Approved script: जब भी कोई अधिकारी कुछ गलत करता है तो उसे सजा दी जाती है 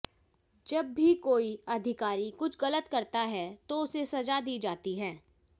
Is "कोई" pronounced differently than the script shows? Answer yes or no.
no